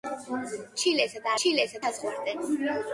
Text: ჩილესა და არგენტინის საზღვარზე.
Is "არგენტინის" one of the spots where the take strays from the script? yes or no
yes